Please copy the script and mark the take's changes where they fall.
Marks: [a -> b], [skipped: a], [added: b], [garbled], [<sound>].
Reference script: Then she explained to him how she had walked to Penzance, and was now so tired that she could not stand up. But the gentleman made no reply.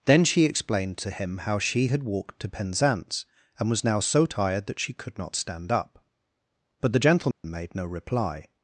Then she explained to him how she had walked to Penzance, and was now so tired that she could not stand up. But the gentleman [dropout] made no reply.